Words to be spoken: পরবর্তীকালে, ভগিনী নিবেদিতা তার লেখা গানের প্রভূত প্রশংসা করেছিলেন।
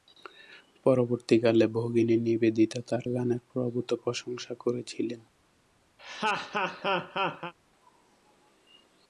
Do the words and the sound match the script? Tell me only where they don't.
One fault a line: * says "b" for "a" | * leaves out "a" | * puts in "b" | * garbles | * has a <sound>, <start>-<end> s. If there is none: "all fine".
* leaves out "লেখা"
* has a laugh, 6.0-7.5 s